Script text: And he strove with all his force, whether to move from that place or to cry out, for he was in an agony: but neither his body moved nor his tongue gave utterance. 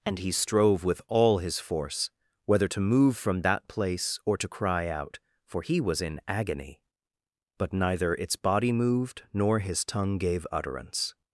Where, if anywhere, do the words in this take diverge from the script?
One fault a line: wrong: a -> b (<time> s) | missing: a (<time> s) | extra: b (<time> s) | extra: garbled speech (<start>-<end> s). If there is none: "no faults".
missing: an (6.2 s)
wrong: his -> its (8.1 s)